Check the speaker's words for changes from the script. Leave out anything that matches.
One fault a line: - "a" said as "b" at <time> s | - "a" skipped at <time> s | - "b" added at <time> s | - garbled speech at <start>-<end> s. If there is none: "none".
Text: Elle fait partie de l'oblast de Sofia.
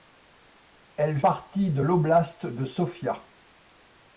- "fait" skipped at 1.2 s